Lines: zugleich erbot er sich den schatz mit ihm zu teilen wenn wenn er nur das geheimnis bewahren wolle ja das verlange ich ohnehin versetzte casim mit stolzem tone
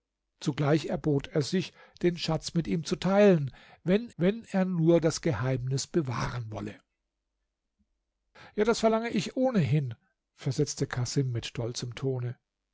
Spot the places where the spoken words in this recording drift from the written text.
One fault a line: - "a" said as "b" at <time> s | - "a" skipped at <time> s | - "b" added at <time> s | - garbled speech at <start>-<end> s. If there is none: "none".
none